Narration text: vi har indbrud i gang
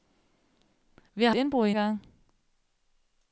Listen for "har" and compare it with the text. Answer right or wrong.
right